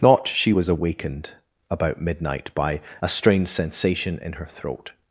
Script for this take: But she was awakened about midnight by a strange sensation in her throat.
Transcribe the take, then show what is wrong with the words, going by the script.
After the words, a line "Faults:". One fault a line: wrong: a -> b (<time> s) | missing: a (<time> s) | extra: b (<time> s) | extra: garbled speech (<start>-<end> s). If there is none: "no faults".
Not she was awakened about midnight by a strange sensation in her throat.
Faults:
wrong: But -> Not (0.0 s)